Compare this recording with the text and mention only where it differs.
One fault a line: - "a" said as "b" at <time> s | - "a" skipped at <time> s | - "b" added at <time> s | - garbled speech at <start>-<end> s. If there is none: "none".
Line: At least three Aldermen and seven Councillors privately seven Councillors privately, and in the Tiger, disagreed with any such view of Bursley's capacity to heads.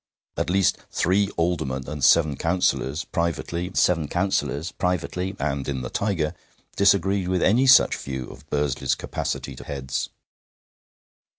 none